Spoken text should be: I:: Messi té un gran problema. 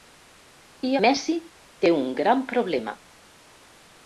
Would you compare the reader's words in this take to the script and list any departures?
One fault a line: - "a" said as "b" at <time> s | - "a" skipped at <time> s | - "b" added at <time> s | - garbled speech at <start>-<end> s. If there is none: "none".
none